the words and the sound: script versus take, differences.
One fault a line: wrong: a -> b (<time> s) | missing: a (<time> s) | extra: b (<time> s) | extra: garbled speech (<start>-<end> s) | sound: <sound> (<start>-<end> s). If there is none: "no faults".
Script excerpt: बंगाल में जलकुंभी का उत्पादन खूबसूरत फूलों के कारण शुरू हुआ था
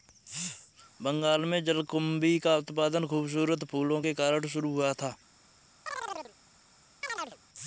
sound: chirp (5.9-6.3 s)
sound: chirp (7.0-7.4 s)